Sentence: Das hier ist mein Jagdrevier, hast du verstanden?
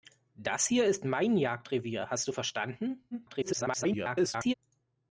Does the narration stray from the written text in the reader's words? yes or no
yes